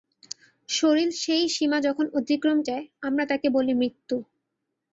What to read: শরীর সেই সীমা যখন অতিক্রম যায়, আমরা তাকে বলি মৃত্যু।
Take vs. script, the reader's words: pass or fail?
pass